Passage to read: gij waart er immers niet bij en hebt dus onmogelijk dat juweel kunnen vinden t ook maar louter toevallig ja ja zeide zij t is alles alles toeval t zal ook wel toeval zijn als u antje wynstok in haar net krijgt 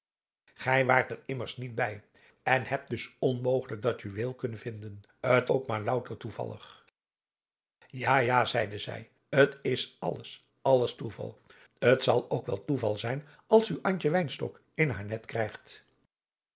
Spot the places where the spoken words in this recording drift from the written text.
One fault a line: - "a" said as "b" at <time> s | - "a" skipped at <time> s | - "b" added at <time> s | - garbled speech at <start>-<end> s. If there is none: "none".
none